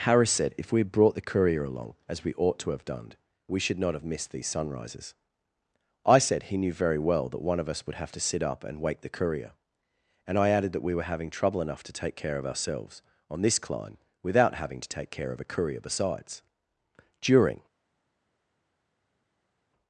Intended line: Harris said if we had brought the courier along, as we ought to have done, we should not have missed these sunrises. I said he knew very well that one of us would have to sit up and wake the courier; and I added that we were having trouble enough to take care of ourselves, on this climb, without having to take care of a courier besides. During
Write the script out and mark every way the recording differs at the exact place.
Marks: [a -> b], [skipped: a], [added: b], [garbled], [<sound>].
Harris said if we had brought the courier along, as we ought to have done, we should not have missed these sunrises. I said he knew very well that one of us would have to sit up and wake the courier; and I added that we were having trouble enough to take care of ourselves, on this climb, without having to take care of a courier besides. During